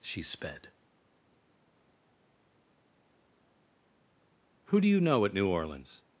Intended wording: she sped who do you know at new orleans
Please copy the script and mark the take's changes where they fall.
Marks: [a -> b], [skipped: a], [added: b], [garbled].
she sped who do you know at new orleans